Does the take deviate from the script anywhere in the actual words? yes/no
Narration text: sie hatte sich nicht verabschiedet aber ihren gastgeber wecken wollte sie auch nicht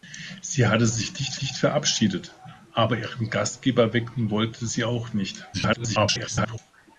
yes